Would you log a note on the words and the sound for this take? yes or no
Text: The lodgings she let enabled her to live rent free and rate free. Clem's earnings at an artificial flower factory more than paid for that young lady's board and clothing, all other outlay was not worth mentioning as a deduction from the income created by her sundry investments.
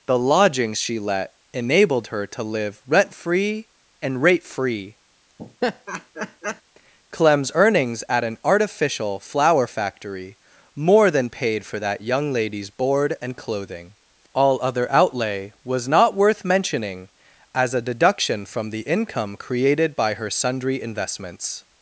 yes